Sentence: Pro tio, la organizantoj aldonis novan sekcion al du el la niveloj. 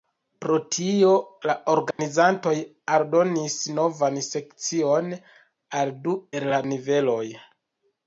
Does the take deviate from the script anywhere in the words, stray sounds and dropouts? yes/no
yes